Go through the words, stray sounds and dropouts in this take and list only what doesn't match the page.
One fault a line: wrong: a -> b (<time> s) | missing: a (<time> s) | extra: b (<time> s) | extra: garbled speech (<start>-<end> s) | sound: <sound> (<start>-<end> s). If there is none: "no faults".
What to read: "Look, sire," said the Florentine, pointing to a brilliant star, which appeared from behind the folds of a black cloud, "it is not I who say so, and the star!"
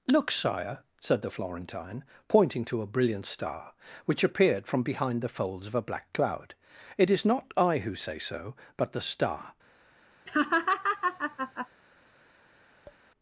wrong: and -> but (8.8 s)
sound: laugh (10.3-11.7 s)
sound: tap (12.9-13.0 s)